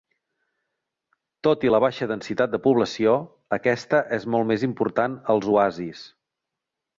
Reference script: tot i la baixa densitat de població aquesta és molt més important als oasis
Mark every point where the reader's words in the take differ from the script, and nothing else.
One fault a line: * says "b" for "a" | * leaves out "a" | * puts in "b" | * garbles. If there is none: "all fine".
all fine